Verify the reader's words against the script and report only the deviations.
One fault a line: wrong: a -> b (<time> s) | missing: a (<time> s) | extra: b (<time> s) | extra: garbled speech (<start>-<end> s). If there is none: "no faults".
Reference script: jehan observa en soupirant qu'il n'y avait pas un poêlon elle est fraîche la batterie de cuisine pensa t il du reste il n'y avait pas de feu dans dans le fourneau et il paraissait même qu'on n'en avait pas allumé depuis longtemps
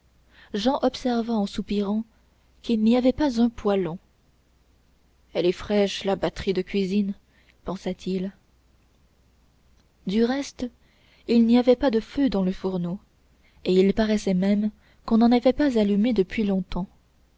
missing: dans (12.4 s)